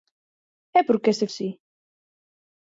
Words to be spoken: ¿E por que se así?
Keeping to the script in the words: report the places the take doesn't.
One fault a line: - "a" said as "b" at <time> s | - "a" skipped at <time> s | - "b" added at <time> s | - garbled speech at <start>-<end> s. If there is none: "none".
none